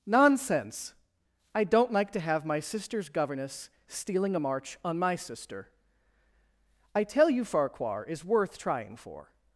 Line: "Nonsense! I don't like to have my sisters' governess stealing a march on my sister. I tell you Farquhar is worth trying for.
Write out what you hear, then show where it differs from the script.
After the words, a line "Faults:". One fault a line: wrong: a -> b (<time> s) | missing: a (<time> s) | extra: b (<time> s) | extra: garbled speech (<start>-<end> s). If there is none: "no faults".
"Nonsense! I don't like to have my sisters' governess stealing a march on my sister. I tell you Farquhar is worth trying for.
Faults:
no faults